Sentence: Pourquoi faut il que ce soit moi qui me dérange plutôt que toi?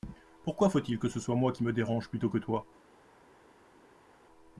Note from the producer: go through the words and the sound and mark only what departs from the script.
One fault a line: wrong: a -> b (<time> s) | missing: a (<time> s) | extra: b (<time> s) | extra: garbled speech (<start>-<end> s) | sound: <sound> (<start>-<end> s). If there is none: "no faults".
no faults